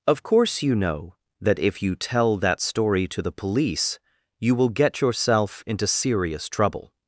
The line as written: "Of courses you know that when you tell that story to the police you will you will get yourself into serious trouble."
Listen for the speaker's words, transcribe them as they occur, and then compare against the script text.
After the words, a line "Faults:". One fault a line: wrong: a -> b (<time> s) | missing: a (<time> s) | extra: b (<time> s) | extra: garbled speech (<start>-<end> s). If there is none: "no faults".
"Of course you know that if you tell that story to the police you will get yourself into serious trouble."
Faults:
wrong: courses -> course (0.2 s)
wrong: when -> if (1.6 s)
missing: you will (4.7 s)